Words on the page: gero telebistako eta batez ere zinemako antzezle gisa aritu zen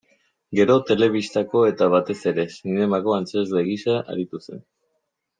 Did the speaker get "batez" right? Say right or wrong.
right